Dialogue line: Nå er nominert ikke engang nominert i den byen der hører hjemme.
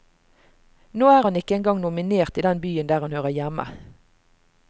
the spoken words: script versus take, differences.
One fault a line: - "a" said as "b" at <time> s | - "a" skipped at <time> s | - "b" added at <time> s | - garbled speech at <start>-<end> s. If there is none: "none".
- "nominert" said as "han" at 1.3 s
- "han" added at 3.1 s